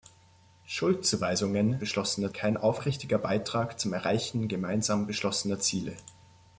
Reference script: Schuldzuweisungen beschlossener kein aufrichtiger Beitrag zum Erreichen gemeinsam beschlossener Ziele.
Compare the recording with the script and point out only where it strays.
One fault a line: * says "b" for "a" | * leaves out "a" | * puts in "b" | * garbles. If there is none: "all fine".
all fine